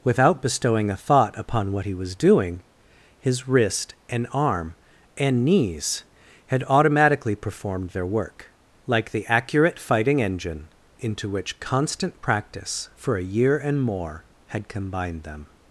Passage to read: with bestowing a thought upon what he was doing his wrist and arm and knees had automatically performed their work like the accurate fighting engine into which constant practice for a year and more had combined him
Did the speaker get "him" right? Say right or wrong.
wrong